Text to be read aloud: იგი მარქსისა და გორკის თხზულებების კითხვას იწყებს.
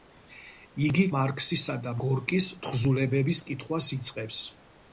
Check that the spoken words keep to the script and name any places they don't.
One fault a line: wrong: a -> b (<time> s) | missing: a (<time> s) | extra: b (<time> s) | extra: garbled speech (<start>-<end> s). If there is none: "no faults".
no faults